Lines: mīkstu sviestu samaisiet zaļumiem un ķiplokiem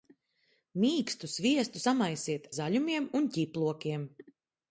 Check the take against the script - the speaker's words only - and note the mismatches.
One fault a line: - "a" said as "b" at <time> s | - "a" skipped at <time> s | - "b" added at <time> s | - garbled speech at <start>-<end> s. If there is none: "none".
none